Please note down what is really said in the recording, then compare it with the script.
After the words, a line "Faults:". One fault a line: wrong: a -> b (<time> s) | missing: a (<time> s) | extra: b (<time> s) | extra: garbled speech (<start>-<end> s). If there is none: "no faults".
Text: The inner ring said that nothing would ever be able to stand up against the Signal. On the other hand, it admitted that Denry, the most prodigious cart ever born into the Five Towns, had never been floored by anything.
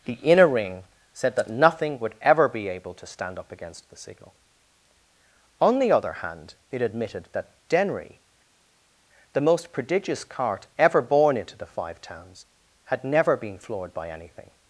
The inner ring said that nothing would ever be able to stand up against the Signal. On the other hand, it admitted that Denry, the most prodigious cart ever born into the Five Towns, had never been floored by anything.
Faults:
no faults